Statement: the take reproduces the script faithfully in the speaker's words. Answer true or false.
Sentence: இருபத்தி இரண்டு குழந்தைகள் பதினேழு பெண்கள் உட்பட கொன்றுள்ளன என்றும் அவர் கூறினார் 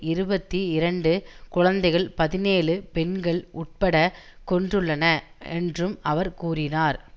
true